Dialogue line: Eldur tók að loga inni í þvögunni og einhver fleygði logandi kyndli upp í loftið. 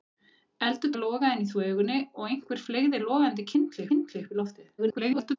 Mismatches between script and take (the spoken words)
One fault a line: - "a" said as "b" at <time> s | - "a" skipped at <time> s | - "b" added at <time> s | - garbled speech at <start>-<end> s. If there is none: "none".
- "tók" skipped at 0.9 s
- "kyndli" added at 3.9 s
- garbled speech at 4.8-5.4 s